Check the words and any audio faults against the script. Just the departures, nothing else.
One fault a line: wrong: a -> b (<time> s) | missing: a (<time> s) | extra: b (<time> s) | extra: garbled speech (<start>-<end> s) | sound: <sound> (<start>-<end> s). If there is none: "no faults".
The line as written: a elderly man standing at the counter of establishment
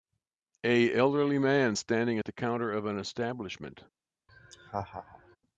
extra: an (2.9 s)
sound: laugh (4.3-5.4 s)